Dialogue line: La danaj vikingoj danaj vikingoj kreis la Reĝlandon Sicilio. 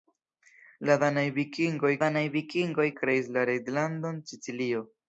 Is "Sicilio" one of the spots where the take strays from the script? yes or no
no